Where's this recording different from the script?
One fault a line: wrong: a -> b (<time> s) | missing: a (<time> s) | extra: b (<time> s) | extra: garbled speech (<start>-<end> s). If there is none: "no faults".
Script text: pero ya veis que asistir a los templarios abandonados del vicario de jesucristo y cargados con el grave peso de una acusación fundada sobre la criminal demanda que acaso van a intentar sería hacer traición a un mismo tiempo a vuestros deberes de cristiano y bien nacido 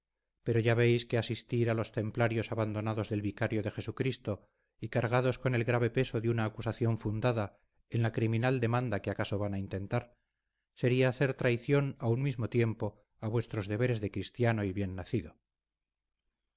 wrong: sobre -> en (7.9 s)